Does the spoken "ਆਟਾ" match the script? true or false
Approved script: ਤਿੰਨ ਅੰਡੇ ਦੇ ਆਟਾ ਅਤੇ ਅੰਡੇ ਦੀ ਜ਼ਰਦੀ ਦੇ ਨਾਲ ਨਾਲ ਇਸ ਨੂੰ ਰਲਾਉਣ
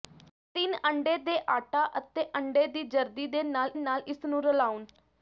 true